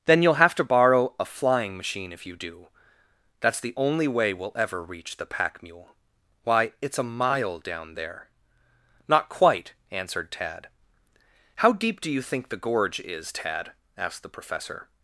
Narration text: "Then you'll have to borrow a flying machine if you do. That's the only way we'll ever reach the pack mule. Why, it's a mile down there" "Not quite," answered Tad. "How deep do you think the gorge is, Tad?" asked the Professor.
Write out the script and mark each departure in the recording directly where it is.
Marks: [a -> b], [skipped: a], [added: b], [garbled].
"Then you'll have to borrow a flying machine if you do. That's the only way we'll ever reach the pack mule. Why, it's a mile down there" "Not quite," answered Tad. "How deep do you think the gorge is, Tad?" asked the Professor.